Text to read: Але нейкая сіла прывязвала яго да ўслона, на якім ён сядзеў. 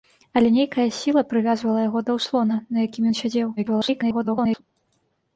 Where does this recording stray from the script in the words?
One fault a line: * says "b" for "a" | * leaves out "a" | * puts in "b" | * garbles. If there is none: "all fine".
* garbles